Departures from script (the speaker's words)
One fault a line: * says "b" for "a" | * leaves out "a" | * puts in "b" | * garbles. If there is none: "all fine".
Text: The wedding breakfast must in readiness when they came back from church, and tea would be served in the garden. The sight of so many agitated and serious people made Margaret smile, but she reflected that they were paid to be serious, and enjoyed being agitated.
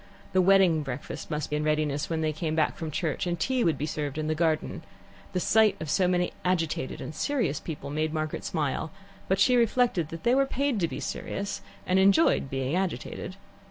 all fine